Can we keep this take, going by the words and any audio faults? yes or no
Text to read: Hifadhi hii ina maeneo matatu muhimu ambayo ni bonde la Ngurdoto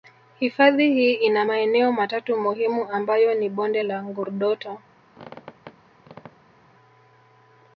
no